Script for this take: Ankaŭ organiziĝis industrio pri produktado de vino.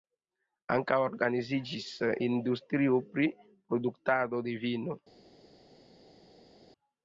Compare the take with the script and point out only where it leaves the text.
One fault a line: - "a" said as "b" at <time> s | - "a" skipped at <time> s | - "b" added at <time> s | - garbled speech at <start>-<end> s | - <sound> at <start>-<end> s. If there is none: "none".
none